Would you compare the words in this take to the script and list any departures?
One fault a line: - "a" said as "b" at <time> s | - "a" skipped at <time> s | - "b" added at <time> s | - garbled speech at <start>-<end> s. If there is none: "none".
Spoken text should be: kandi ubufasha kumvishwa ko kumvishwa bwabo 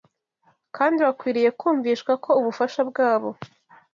- "ubufasha" said as "bakwiriye" at 1.1 s
- "kumvishwa" said as "ubufasha" at 2.4 s